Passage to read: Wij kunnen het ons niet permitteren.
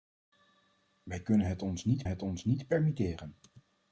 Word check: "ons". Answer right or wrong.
right